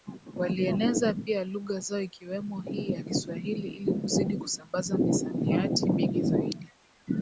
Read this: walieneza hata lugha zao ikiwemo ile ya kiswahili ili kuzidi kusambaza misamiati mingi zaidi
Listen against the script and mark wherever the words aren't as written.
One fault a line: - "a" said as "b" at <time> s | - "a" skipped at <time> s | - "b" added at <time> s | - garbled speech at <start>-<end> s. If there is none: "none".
- "hata" said as "pia" at 1.1 s
- "ile" said as "hii" at 2.6 s